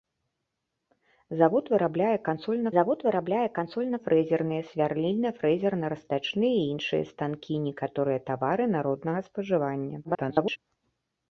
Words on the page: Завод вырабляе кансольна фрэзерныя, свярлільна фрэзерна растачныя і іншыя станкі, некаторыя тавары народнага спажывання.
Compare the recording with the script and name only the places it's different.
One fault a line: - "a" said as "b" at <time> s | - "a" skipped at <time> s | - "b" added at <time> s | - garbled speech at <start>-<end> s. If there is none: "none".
- "завод вырабляе кансольна" added at 2.8 s
- garbled speech at 10.0-10.6 s